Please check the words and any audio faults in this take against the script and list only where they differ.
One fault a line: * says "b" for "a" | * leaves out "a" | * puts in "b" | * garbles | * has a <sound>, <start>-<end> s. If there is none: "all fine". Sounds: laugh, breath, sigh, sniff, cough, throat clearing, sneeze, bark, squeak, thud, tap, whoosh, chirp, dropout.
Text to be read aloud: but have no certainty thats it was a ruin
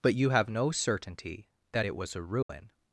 * puts in "you"
* says "that" for "thats"
* has a dropout, 2.4-2.5 s